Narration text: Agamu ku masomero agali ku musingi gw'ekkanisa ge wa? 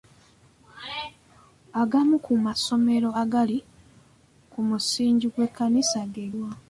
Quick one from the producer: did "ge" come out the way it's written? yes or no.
yes